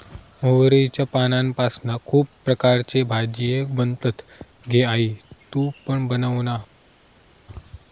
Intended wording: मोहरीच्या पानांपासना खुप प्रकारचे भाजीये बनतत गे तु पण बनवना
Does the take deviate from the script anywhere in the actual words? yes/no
yes